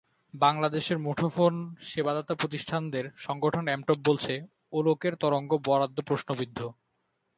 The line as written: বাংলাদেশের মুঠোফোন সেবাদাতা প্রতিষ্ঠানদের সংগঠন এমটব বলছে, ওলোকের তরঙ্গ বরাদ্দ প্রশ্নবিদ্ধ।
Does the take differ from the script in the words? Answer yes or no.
no